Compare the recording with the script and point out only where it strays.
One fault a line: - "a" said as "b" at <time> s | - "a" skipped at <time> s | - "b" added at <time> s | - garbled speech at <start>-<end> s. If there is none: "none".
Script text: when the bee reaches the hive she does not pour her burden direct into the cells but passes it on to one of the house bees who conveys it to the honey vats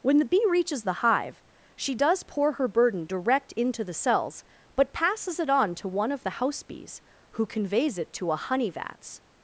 - "not" skipped at 2.2 s
- "the" said as "a" at 8.3 s